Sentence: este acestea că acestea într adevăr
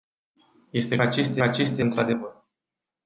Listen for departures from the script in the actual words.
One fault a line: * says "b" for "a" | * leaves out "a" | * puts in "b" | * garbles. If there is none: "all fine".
all fine